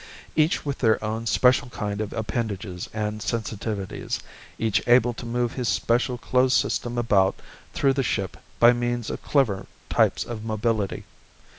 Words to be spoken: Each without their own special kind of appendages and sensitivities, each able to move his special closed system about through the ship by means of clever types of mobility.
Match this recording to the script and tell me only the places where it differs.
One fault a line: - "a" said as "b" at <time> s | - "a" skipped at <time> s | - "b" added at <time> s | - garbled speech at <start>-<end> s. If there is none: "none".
- "without" said as "with" at 0.7 s